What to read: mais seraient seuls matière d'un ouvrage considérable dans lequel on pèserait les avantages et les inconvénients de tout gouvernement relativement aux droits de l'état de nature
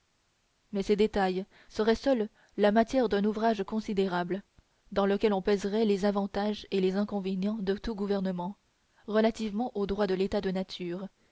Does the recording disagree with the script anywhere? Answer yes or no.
yes